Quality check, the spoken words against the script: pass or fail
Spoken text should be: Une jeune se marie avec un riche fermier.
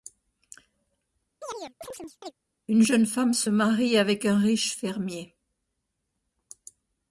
fail